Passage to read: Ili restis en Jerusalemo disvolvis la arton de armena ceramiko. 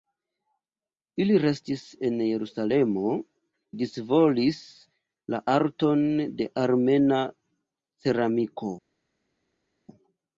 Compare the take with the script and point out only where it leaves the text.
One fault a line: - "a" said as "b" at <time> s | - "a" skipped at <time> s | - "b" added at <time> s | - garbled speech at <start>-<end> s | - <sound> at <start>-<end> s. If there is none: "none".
none